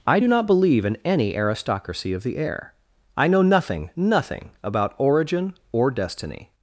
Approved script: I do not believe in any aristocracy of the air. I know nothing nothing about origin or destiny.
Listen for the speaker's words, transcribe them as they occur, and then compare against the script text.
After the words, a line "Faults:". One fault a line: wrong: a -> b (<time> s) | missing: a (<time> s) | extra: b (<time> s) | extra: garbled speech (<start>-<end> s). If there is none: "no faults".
I do not believe in any aristocracy of the air. I know nothing nothing about origin or destiny.
Faults:
no faults